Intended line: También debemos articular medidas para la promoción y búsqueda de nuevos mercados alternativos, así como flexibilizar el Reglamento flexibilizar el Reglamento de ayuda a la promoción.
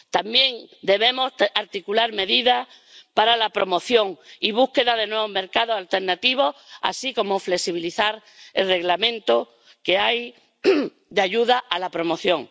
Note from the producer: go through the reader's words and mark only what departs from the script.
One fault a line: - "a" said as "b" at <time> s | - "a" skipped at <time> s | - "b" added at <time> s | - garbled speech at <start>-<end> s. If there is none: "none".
- "flexibilizar el Reglamento" skipped at 9.5 s